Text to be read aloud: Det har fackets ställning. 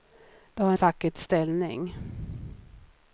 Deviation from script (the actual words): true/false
false